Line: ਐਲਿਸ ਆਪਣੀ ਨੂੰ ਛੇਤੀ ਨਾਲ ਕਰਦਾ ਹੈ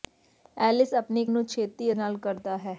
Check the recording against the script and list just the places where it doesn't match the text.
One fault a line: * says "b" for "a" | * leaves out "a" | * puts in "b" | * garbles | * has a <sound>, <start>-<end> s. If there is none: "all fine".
all fine